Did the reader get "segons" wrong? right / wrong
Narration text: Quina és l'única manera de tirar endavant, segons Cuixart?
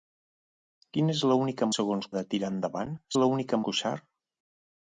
wrong